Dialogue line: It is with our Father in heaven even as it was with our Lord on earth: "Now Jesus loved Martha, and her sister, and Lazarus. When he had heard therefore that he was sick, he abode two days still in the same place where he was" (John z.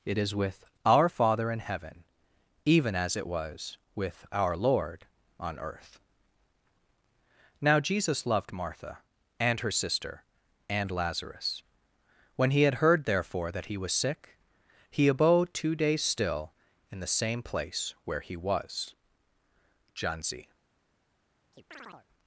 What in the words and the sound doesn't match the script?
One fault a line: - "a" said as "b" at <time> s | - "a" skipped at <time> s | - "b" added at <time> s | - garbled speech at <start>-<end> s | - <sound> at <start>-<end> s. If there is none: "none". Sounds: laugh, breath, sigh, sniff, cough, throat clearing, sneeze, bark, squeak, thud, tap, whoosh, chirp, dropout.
- chirp at 21.5-22.1 s